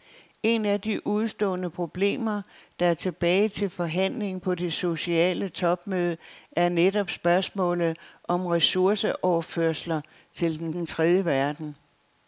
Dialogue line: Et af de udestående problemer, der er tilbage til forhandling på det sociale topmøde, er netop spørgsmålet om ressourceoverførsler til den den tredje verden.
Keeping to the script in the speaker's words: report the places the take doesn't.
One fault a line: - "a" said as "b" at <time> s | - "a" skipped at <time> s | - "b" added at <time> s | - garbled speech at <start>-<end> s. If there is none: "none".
none